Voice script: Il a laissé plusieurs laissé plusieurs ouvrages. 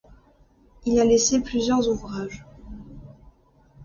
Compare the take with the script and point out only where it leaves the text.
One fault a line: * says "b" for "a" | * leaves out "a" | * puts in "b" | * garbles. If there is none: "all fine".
* leaves out "laissé plusieurs"